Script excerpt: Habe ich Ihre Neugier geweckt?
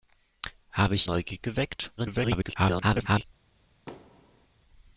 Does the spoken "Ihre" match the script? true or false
false